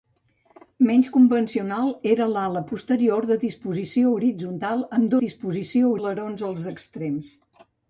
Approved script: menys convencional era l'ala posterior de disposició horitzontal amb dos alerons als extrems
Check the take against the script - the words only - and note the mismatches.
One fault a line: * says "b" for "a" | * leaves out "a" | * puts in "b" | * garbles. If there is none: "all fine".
* says "disposició" for "dos"